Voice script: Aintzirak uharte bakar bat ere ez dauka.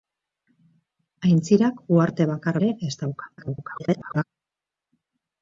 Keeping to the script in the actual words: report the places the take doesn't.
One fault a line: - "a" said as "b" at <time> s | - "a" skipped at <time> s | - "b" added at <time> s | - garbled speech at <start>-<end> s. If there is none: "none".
- "bat" skipped at 2.6 s
- garbled speech at 3.4-4.2 s